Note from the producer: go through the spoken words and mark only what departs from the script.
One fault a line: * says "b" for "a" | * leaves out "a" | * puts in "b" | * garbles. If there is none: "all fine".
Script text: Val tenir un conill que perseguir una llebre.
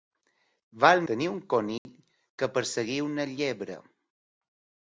all fine